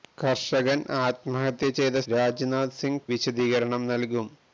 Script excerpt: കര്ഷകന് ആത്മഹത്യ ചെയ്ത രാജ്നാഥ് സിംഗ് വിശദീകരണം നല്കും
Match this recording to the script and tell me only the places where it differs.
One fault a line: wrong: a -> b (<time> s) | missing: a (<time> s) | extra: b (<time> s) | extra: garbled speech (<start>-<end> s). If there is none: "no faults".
no faults